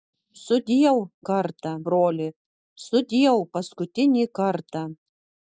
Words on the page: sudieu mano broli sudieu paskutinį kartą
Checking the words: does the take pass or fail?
fail